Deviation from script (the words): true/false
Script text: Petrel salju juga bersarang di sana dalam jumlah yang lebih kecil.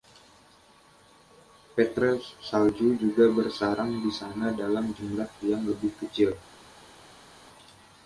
false